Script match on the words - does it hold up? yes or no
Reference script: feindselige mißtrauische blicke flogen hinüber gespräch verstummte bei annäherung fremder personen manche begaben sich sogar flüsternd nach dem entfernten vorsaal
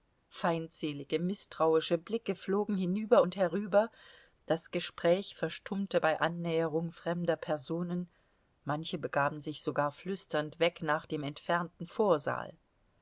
no